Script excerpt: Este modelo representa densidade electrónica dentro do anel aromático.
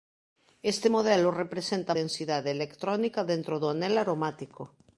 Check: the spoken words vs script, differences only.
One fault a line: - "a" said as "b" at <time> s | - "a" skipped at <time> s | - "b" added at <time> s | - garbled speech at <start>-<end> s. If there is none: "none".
none